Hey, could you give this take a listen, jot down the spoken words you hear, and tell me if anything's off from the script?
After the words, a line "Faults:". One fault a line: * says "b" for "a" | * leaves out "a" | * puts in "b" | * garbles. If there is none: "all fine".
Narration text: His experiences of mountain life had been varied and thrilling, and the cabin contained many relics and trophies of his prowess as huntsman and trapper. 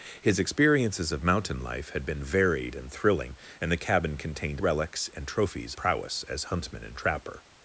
His experiences of mountain life had been varied and thrilling, and the cabin contained relics and trophies prowess as huntsman and trapper.
Faults:
* leaves out "many"
* leaves out "of his"